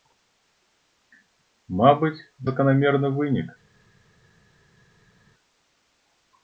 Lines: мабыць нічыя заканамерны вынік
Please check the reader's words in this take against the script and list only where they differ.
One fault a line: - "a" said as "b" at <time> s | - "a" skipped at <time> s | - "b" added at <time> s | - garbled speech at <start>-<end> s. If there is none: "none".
- "нічыя" skipped at 2.2 s